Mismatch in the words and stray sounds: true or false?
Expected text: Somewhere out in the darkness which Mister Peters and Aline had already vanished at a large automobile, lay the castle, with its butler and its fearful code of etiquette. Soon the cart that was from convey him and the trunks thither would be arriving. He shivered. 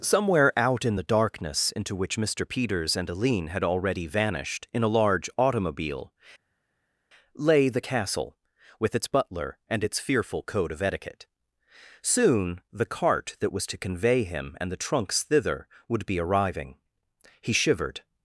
true